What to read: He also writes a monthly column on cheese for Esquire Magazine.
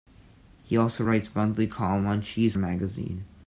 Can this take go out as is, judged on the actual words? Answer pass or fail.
fail